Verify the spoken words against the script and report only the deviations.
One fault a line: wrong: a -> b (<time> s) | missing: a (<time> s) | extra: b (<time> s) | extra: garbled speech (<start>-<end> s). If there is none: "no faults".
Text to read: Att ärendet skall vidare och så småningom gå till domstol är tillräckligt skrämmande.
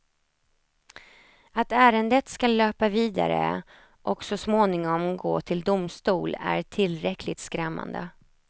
extra: löpa (2.6 s)